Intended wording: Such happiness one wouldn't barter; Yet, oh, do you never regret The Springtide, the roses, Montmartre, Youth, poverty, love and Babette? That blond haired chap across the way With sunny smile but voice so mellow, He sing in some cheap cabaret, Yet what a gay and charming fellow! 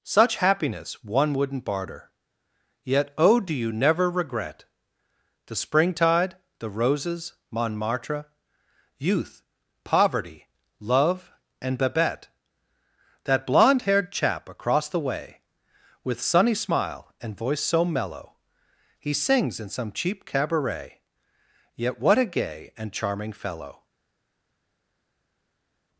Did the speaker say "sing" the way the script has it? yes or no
no